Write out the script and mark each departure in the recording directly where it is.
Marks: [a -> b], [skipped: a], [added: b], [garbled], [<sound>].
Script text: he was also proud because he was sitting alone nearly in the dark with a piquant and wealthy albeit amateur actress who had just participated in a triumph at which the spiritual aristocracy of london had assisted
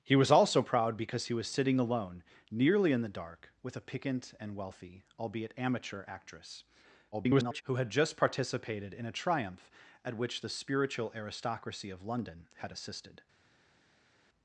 he was also proud because he was sitting alone nearly in the dark with a piquant and wealthy albeit amateur actress [garbled] who had just participated in a triumph at which the spiritual aristocracy of london had assisted